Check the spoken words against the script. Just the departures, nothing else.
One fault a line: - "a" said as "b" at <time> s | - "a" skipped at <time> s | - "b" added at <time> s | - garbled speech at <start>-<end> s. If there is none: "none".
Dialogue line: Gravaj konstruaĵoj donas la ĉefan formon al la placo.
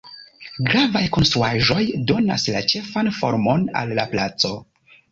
none